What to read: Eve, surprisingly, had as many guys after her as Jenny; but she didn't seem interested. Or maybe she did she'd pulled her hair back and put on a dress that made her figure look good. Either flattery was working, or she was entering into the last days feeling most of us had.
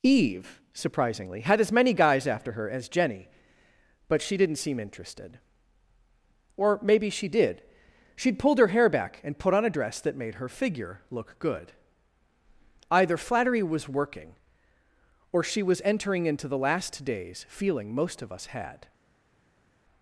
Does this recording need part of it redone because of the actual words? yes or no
no